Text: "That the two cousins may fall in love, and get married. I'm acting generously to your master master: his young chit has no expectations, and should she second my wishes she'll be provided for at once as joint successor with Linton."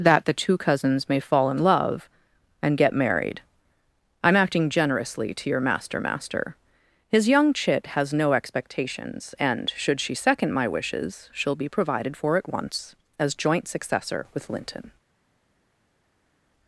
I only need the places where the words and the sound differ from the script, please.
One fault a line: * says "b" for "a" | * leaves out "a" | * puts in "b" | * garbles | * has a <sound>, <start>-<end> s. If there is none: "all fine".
all fine